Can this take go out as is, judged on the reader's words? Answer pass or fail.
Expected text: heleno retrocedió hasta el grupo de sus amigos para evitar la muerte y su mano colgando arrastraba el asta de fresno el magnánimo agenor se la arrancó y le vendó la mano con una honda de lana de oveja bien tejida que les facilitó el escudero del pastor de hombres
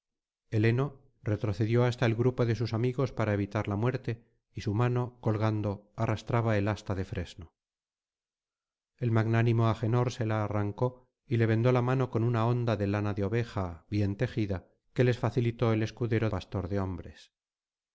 fail